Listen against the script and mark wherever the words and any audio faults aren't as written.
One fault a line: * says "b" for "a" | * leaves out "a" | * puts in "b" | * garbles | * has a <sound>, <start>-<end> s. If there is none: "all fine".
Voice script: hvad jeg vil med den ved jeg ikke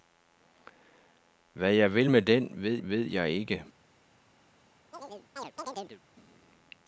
* puts in "ved"
* has a chirp, 4.9-6.0 s